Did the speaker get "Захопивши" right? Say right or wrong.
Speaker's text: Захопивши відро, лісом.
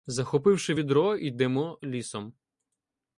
right